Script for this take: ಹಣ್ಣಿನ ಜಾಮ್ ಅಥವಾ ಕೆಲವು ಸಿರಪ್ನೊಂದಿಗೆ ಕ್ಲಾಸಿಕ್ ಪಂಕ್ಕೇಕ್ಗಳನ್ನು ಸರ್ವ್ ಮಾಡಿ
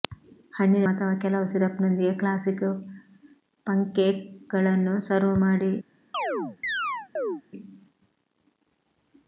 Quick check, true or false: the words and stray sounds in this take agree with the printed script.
false